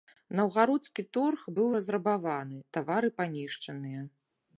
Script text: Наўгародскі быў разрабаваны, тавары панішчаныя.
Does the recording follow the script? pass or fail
fail